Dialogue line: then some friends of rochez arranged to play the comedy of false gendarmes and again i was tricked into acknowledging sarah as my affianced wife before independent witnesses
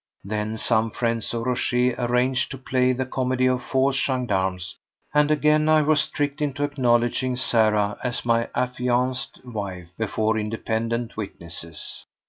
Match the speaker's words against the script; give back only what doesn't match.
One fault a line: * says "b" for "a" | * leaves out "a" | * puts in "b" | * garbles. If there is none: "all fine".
all fine